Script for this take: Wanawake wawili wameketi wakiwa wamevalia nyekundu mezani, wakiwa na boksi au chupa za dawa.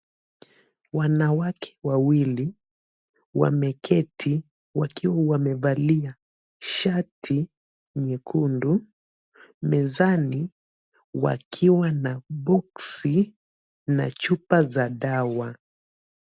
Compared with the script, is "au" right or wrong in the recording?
wrong